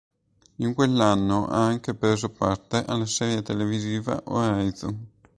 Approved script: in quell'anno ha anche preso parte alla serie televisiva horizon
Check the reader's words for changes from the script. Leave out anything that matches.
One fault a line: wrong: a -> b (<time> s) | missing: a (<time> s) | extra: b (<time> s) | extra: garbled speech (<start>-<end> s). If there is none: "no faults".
no faults